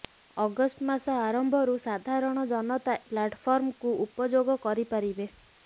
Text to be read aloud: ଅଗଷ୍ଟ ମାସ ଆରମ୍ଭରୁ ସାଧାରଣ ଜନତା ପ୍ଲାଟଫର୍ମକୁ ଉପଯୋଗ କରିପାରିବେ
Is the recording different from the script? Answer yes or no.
no